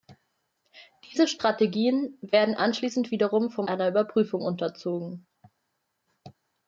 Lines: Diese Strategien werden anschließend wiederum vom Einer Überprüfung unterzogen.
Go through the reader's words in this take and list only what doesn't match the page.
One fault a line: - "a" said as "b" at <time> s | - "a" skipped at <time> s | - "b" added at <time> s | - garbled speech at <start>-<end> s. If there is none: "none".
none